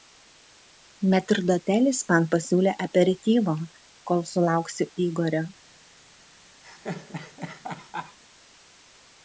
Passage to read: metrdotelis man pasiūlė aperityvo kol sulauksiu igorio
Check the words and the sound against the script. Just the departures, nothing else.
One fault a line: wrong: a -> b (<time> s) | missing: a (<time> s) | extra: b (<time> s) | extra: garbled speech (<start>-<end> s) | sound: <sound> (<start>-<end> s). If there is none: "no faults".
sound: laugh (6.6-8.2 s)